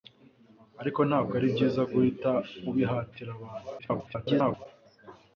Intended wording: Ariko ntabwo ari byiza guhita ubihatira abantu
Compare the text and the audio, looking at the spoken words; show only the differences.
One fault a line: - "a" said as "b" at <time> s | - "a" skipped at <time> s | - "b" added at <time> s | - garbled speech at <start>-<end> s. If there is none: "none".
- garbled speech at 3.8-4.7 s